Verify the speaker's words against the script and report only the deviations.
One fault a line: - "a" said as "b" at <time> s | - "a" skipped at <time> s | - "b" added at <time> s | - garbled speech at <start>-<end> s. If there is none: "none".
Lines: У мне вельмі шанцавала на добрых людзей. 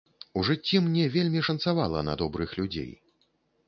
- "жыцці" added at 0.5 s